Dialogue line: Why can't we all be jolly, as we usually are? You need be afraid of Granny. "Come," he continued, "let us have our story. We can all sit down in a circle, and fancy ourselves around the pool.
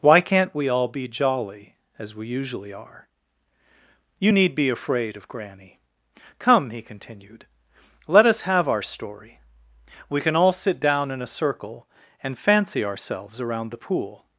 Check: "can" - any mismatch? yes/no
no